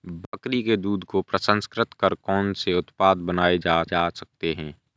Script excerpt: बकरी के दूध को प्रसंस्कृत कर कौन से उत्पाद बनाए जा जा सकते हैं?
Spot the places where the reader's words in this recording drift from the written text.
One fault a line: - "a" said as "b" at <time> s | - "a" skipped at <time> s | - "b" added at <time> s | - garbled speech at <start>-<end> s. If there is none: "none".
none